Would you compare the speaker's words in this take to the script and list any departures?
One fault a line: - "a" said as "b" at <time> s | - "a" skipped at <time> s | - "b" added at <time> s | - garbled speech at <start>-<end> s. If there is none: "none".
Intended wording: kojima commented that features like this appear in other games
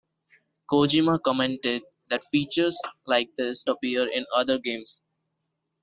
none